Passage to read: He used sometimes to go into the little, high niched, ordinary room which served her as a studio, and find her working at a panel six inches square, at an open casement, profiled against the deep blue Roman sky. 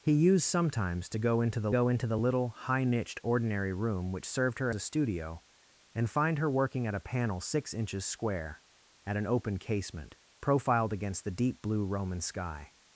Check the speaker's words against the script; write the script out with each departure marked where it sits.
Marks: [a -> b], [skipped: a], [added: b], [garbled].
He used sometimes to go into the [added: go into the] little, high niched, ordinary room which served her [skipped: as] a studio, and find her working at a panel six inches square, at an open casement, profiled against the deep blue Roman sky.